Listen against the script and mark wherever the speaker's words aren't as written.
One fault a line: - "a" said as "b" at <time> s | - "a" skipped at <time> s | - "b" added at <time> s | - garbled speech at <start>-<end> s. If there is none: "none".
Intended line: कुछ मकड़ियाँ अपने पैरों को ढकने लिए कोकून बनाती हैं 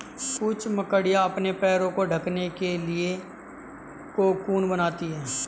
- "के" added at 2.6 s